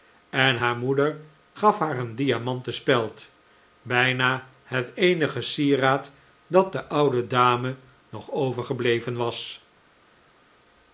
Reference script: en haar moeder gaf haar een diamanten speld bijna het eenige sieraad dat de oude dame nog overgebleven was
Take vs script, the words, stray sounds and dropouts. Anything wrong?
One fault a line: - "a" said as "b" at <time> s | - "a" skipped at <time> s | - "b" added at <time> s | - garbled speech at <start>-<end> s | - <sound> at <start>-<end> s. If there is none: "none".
none